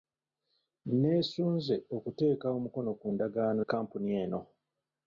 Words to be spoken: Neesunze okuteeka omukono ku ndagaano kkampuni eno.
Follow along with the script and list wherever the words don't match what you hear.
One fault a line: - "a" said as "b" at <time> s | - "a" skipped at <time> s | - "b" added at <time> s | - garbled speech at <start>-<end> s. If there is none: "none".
none